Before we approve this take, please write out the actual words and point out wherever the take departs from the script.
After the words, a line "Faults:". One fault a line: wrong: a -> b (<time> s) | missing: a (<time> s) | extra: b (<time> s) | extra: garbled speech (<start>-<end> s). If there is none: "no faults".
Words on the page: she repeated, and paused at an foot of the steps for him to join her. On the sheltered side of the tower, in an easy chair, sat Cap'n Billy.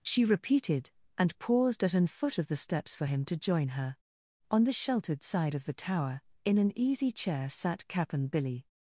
she repeated, and paused at an foot of the steps for him to join her. On the sheltered side of the tower, in an easy chair, sat Cap'n Billy.
Faults:
no faults